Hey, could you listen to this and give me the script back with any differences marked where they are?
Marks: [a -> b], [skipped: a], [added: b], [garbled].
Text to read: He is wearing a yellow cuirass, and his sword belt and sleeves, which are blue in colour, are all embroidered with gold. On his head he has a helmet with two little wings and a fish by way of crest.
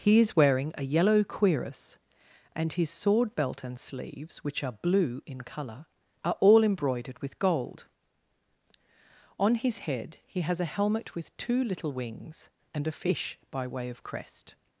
He is wearing a yellow cuirass, and his sword belt and sleeves, which are blue in colour, are all embroidered with gold. On his head he has a helmet with two little wings and a fish by way of crest.